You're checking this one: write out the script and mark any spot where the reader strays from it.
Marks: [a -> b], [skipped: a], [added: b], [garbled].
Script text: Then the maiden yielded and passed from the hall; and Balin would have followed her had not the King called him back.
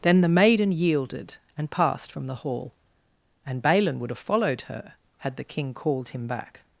Then the maiden yielded and passed from the hall; and Balin would have followed her had [skipped: not] the King called him back.